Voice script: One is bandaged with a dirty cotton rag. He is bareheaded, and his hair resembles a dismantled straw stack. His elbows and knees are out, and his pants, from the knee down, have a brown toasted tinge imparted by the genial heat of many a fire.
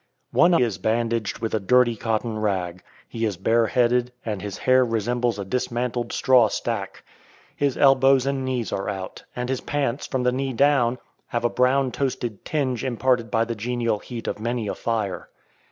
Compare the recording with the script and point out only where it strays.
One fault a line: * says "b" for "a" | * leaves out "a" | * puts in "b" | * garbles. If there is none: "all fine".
all fine